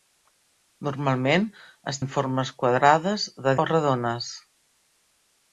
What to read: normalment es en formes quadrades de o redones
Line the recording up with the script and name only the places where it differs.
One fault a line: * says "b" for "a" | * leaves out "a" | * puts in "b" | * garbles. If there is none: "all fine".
all fine